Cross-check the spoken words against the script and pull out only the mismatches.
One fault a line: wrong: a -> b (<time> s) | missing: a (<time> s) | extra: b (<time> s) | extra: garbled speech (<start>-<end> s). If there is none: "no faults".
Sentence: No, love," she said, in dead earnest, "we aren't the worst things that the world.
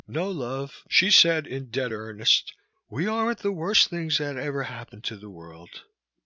extra: ever happened to (4.4 s)